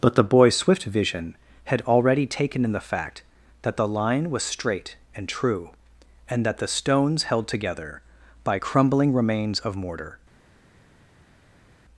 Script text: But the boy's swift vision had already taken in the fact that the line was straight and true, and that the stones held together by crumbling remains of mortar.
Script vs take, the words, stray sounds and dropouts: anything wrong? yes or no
no